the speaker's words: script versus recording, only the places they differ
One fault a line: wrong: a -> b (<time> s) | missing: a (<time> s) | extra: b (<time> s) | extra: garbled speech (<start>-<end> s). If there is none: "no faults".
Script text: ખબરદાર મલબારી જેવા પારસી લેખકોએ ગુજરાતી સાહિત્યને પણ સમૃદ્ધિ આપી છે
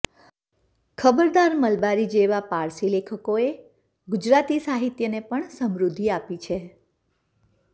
no faults